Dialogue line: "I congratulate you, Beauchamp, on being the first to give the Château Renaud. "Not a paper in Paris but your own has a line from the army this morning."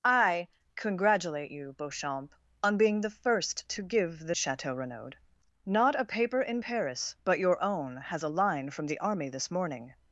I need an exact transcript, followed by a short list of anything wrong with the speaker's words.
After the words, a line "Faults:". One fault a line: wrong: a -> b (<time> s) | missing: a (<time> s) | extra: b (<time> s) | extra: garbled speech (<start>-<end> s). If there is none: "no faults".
"I congratulate you, Beauchamp, on being the first to give the Château Renaud. "Not a paper in Paris but your own has a line from the army this morning."
Faults:
no faults